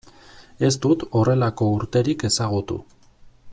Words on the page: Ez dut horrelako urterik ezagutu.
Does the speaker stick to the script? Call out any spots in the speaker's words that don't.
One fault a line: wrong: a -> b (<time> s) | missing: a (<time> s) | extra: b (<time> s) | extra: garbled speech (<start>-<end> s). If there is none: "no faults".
no faults